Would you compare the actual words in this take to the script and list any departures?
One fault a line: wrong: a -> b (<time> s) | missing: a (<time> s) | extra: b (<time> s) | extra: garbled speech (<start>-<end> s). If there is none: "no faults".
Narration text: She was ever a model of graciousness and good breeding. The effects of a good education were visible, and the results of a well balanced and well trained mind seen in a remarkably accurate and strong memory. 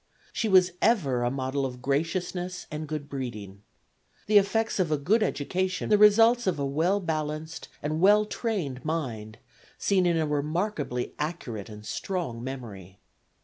missing: were visible and (5.9 s)